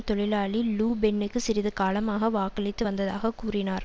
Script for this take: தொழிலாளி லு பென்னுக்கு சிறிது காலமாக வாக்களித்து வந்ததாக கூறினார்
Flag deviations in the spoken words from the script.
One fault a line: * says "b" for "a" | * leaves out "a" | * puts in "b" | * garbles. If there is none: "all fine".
all fine